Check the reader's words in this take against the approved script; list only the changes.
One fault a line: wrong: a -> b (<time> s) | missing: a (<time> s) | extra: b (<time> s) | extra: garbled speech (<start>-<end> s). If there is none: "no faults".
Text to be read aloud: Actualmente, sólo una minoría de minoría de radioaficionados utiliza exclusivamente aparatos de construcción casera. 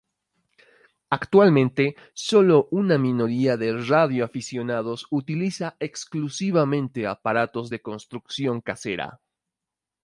missing: minoría de (3.8 s)